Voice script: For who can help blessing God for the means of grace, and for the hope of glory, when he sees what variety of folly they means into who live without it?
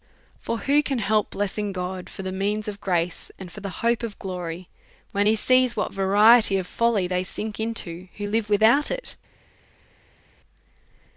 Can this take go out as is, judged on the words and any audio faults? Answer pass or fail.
fail